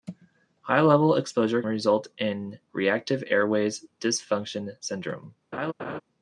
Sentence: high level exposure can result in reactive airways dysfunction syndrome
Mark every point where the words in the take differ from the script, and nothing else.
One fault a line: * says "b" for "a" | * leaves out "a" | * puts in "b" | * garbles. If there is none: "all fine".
* leaves out "can"